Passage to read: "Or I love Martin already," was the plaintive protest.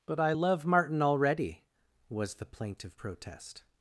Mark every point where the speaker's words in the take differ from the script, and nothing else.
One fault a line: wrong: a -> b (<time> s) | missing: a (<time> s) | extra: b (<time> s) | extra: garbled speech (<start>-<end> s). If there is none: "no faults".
wrong: Or -> But (0.1 s)